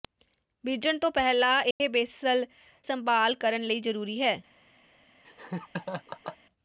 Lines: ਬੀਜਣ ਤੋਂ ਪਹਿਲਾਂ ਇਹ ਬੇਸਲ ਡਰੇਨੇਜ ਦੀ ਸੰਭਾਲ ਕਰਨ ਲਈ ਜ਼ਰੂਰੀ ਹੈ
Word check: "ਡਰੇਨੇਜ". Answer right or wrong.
wrong